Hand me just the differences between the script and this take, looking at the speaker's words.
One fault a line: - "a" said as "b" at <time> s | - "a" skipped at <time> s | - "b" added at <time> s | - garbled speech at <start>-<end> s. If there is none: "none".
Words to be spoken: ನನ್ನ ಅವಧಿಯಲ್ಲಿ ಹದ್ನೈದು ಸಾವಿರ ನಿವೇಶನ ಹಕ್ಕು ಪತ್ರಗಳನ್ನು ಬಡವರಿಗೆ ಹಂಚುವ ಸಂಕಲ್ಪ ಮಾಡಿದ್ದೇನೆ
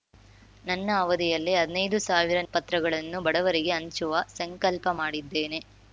- "ನಿವೇಶನ ಹಕ್ಕು" skipped at 2.4 s